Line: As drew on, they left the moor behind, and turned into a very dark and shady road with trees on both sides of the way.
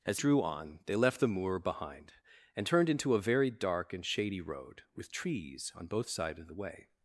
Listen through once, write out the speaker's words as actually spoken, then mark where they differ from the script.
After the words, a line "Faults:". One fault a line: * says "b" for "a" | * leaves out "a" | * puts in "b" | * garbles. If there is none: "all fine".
As drew on, they left the moor behind, and turned into a very dark and shady road with trees on both sides of the way.
Faults:
all fine